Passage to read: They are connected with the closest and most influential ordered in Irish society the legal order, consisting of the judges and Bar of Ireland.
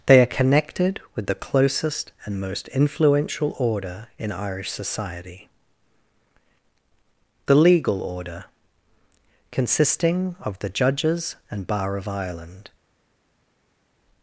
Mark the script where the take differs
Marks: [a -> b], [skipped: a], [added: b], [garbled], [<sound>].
They are connected with the closest and most influential [ordered -> order] in Irish society the legal order, consisting of the judges and Bar of Ireland.